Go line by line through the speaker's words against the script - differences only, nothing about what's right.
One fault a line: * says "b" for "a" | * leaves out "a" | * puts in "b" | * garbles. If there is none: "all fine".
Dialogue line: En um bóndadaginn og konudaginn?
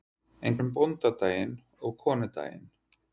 all fine